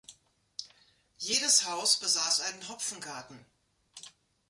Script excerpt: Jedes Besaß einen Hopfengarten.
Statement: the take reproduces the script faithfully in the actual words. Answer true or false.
false